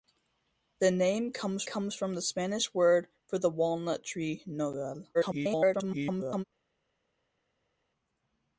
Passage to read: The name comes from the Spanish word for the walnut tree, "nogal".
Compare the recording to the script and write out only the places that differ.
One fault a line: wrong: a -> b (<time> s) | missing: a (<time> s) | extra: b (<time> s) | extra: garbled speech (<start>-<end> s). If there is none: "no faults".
extra: comes (1.6 s)
extra: garbled speech (5.1-6.4 s)